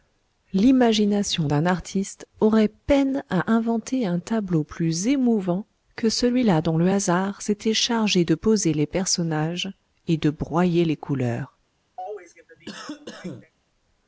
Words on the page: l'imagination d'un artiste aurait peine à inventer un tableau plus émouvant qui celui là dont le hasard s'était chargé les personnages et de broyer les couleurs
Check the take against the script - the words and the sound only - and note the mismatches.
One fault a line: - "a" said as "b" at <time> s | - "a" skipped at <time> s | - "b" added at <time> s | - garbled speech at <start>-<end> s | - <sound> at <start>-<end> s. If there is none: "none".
- "qui" said as "que" at 6.0 s
- "de poser" added at 8.2 s
- cough at 12.0-13.5 s